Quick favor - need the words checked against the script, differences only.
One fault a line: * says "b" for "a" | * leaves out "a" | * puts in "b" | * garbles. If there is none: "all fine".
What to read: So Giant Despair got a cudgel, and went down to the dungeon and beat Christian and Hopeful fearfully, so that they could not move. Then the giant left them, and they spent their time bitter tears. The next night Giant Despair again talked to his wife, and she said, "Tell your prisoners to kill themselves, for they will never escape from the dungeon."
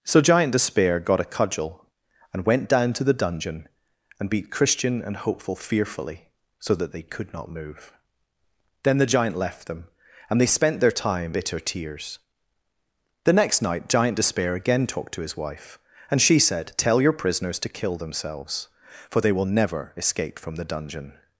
all fine